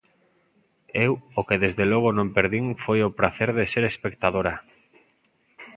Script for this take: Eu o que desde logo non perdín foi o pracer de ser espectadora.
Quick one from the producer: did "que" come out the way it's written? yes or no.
yes